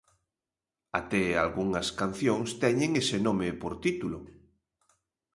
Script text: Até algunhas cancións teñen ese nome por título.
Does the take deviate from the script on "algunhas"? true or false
false